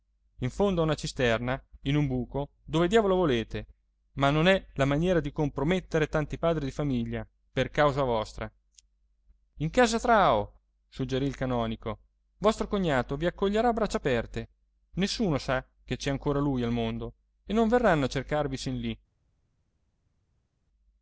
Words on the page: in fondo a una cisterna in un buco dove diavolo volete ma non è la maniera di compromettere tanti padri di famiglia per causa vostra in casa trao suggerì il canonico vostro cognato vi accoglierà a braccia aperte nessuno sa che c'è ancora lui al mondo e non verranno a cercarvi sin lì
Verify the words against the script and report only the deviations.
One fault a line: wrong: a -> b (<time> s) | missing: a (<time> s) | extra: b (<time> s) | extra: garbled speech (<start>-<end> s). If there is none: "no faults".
no faults